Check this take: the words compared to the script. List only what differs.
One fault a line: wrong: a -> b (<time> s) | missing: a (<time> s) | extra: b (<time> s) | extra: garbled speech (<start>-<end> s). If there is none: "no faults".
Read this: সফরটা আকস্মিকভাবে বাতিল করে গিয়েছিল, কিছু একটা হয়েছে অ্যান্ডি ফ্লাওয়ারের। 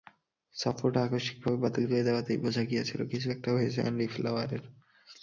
extra: দেওয়াতেই বোঝা (2.0 s)